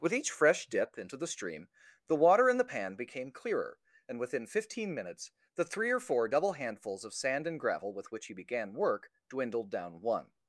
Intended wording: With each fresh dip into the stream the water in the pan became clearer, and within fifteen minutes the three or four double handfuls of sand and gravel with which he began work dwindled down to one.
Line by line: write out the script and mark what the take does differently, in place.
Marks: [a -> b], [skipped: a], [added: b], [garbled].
With each fresh dip into the stream the water in the pan became clearer, and within fifteen minutes the three or four double handfuls of sand and gravel with which he began work dwindled down [skipped: to] one.